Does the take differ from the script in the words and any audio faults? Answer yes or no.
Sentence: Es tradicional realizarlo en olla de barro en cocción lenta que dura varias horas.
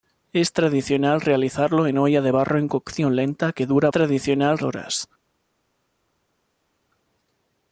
yes